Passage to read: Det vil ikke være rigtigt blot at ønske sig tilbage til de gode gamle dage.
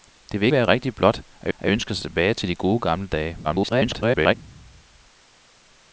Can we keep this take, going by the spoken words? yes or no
no